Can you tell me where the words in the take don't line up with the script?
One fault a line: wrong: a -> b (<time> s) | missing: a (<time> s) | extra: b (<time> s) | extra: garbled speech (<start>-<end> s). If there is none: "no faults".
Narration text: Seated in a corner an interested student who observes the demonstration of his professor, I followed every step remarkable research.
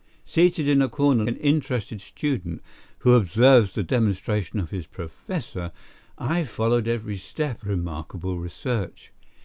no faults